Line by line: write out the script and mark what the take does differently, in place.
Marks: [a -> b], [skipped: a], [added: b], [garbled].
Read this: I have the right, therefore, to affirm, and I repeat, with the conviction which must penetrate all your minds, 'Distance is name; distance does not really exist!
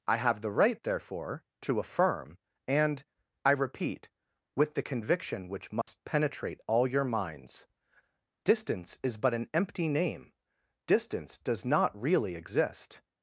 I have the right, therefore, to affirm, and I repeat, with the conviction which must penetrate all your minds, 'Distance is [added: but an empty] name; distance does not really exist!